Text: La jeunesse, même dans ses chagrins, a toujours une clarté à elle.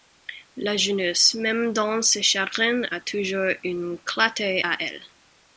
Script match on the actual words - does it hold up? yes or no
yes